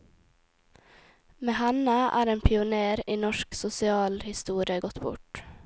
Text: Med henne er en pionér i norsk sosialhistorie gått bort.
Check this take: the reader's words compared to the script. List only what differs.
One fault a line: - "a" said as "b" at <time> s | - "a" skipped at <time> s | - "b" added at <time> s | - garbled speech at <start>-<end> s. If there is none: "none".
none